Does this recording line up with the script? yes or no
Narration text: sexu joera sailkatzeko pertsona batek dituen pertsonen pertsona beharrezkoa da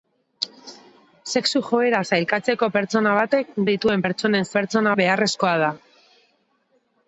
yes